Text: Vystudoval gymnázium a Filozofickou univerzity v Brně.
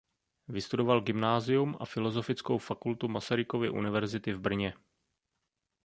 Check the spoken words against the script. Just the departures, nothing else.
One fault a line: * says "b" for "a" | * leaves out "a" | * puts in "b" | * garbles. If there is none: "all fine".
* puts in "fakultu Masarykovy"